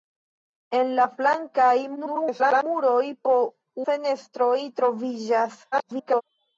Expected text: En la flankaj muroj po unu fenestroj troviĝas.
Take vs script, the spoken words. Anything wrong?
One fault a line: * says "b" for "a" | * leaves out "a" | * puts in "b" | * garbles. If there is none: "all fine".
* garbles
* leaves out "unu"
* garbles